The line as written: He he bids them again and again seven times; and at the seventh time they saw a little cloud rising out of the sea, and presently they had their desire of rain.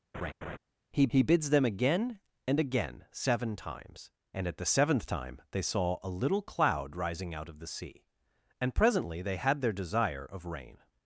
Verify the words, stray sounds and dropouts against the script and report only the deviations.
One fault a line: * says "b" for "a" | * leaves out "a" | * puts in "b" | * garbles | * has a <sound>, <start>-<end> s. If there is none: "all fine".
* has a laugh, 0.1-0.6 s